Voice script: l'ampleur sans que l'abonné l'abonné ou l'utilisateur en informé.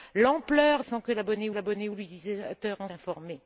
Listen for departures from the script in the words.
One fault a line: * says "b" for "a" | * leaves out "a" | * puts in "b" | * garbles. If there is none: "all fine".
all fine